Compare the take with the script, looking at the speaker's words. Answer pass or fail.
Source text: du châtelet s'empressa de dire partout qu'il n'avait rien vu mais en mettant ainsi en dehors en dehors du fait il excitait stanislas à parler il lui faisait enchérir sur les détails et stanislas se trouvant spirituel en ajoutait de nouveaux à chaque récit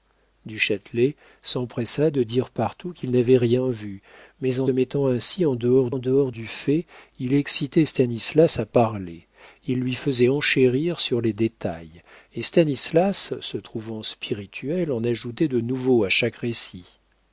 pass